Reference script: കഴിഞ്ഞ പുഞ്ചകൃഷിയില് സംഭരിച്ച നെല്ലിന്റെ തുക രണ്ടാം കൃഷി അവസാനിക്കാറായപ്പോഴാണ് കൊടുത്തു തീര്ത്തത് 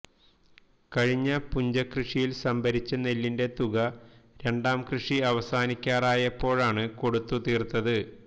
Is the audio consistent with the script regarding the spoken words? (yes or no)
yes